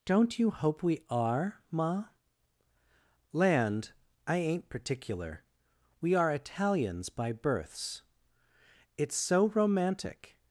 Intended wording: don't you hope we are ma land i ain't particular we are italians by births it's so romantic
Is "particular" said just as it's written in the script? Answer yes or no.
yes